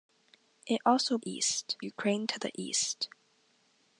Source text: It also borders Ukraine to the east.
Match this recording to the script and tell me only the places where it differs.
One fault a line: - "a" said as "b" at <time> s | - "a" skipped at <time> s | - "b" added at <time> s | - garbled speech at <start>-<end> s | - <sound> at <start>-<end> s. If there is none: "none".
- "borders" said as "east" at 1.2 s